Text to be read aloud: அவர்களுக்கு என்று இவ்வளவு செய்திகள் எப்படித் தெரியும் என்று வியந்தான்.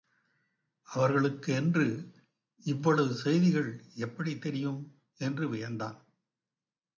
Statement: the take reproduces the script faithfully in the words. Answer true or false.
true